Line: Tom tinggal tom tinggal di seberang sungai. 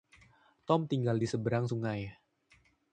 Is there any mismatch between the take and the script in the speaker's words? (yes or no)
yes